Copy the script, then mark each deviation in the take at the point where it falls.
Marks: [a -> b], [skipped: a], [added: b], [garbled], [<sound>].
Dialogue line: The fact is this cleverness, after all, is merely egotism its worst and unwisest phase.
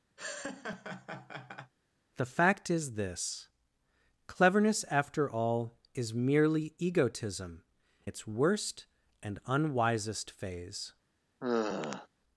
[laugh] The fact is this cleverness, after all, is merely egotism its worst and unwisest phase. [sigh]